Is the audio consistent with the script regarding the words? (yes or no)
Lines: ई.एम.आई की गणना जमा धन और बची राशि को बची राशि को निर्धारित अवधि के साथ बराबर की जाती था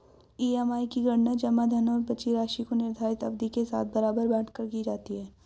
no